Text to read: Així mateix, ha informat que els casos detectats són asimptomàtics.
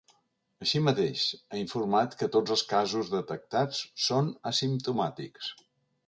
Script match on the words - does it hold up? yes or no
no